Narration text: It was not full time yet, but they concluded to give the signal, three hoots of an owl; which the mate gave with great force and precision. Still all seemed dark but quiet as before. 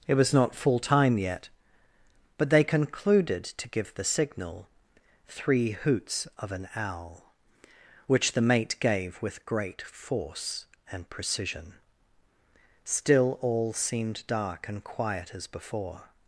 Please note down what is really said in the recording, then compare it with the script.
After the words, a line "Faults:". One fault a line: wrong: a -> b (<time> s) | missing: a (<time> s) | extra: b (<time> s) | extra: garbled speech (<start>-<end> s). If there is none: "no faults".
It was not full time yet, but they concluded to give the signal, three hoots of an owl; which the mate gave with great force and precision. Still all seemed dark and quiet as before.
Faults:
wrong: but -> and (14.7 s)